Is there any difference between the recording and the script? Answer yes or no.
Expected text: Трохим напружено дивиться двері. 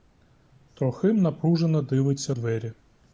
no